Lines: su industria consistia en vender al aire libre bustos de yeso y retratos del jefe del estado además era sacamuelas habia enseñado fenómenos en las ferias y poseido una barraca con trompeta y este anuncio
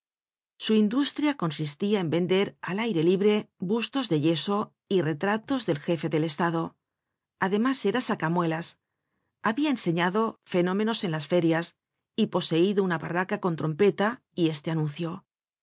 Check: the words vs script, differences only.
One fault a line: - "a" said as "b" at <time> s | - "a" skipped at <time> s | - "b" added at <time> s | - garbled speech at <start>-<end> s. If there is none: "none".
none